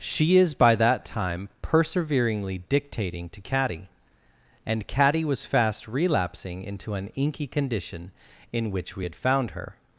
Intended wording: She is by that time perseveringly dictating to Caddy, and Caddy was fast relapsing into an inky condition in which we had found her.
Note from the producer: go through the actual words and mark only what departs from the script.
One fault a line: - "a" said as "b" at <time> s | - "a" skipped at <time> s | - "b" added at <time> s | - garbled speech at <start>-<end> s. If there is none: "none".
none